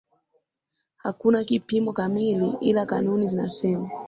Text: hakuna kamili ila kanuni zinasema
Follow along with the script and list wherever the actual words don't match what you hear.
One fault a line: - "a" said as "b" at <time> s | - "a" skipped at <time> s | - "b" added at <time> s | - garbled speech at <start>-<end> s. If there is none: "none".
- "kipimo" added at 1.4 s